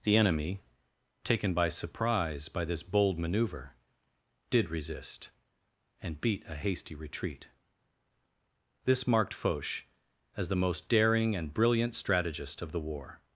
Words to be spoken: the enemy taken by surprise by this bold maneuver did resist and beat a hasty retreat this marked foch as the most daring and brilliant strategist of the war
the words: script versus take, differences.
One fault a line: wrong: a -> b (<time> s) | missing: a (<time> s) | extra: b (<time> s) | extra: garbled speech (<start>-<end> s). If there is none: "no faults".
no faults